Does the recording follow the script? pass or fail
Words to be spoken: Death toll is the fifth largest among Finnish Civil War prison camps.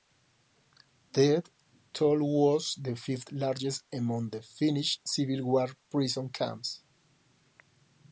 fail